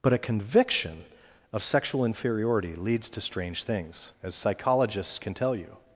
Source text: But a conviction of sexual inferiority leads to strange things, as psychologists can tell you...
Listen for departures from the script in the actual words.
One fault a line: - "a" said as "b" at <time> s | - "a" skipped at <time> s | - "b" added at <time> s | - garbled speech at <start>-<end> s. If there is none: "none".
none